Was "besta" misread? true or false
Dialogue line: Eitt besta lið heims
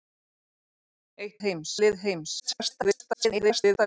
true